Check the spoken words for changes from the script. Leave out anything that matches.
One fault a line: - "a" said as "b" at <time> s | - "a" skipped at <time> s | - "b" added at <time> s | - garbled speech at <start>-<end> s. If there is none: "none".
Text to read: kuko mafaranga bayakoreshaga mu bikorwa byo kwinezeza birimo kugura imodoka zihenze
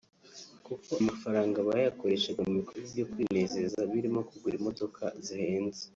none